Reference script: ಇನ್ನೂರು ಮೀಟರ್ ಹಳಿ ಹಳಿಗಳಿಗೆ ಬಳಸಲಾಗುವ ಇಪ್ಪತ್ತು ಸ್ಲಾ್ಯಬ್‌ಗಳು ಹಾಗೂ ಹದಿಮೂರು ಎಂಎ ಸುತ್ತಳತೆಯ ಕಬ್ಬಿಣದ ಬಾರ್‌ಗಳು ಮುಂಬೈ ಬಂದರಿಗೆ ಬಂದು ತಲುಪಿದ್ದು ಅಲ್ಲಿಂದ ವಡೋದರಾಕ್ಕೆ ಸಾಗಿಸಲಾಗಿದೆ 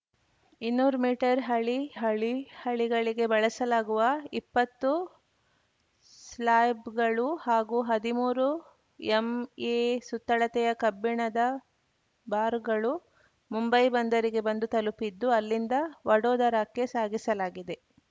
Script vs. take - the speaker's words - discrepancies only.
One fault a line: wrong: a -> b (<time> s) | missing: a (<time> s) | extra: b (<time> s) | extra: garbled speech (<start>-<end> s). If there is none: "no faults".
extra: ಹಳಿ (1.9 s)